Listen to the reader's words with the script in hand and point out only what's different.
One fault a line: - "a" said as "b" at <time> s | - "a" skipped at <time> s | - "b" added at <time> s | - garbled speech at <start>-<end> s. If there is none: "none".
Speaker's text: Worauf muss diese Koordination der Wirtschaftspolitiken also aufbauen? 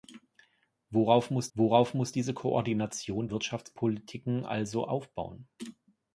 - "worauf muss" added at 1.5 s
- "der" skipped at 3.3 s